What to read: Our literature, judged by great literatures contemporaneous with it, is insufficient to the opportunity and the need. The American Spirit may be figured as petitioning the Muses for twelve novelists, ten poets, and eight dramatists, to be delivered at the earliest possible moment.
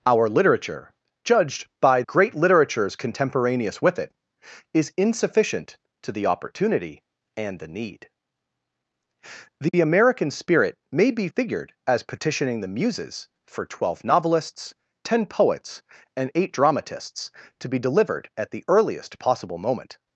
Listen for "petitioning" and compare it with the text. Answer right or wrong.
right